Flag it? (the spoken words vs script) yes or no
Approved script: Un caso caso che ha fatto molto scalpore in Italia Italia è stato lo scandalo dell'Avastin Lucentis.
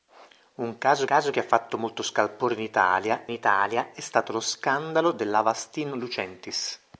no